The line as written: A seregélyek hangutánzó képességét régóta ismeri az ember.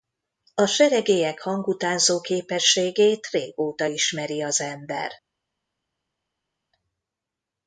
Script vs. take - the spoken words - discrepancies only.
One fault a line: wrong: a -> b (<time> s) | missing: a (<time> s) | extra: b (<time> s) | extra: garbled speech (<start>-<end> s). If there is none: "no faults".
no faults